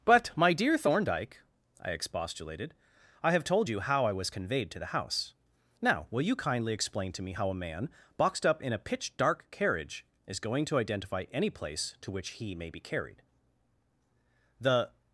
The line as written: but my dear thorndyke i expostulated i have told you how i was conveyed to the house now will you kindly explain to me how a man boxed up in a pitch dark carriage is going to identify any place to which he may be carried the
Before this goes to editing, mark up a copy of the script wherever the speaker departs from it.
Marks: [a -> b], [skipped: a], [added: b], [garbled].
but my dear thorndyke i expostulated i have told you how i was conveyed to the house now will you kindly explain to me how a man boxed up in a pitch dark carriage is going to identify any place to which he may be carried the